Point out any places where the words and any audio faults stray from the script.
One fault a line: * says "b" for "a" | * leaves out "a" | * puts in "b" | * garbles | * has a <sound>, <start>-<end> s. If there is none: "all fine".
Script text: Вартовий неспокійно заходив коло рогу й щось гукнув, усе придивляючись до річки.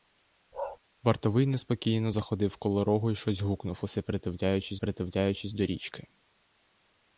* has a bark, 0.5-0.8 s
* puts in "придивляючись"